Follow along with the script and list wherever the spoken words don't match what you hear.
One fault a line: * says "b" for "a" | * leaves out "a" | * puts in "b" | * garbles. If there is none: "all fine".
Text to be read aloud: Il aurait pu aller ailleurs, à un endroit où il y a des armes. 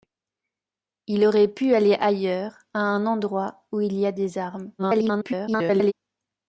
* garbles